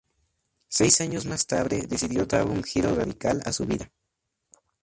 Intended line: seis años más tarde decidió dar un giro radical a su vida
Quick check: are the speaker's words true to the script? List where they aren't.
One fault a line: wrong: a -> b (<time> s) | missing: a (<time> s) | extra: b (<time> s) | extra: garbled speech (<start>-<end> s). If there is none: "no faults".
no faults